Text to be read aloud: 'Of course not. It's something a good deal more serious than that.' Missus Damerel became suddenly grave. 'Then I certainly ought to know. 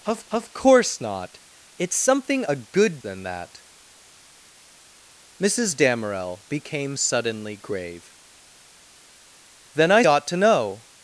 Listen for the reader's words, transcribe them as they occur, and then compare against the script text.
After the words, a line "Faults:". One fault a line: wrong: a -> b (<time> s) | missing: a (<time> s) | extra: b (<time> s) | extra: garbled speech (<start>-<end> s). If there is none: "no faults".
'Of of course not. It's something a good than that.' Missus Damerel became suddenly grave. 'Then I ought to know.
Faults:
extra: of (0.3 s)
missing: deal more serious (3.0 s)
missing: certainly (10.0 s)